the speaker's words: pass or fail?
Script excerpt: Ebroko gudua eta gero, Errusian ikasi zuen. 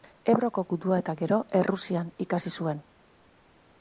pass